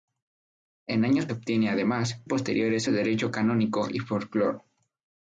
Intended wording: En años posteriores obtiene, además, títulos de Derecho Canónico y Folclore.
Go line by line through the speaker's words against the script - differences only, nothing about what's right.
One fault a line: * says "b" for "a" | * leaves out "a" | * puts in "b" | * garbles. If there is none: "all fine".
* leaves out "posteriores"
* says "posteriores" for "títulos"